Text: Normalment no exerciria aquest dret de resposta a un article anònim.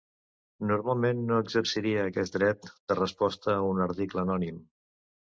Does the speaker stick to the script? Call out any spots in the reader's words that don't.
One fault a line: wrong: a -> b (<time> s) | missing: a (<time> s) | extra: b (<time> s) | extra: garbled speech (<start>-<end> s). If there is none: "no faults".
no faults